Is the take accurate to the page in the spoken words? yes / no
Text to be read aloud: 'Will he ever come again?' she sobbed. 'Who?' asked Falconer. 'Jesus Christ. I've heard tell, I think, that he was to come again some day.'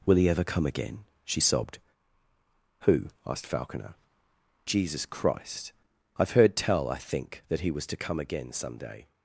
yes